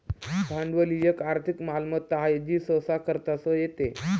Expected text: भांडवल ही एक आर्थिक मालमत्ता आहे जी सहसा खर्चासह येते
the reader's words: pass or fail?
pass